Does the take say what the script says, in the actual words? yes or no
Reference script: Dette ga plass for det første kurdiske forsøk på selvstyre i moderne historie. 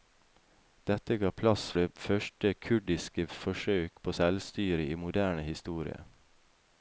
no